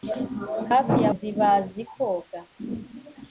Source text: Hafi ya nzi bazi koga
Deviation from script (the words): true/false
false